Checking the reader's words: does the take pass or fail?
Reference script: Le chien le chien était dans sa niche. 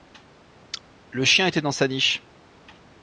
fail